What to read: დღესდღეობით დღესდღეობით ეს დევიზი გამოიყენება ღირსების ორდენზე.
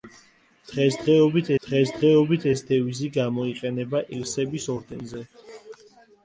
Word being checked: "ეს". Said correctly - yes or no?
yes